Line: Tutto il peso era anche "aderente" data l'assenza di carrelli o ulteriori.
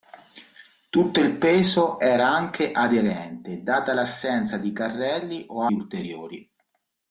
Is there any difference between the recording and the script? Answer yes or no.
no